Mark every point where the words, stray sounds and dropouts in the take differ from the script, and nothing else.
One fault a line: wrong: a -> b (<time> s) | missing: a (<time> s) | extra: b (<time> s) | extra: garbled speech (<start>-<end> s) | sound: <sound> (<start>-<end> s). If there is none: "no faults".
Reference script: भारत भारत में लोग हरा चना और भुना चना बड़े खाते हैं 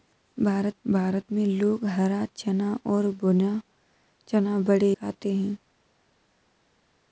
no faults